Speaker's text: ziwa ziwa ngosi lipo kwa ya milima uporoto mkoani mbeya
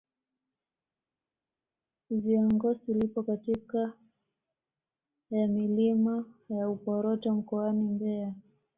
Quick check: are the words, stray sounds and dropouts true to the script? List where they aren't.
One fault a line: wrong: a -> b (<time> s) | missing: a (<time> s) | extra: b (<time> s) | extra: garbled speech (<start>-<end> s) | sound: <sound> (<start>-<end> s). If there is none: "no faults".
missing: ziwa (2.5 s)
wrong: kwa -> katika (3.2 s)
extra: ya (6.5 s)